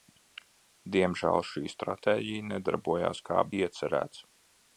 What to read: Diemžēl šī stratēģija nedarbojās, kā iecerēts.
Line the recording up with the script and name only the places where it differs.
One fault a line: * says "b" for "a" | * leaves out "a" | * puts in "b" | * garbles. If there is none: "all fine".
all fine